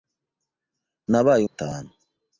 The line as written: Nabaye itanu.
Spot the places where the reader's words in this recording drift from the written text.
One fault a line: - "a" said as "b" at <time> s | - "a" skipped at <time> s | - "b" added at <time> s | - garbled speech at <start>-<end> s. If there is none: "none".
none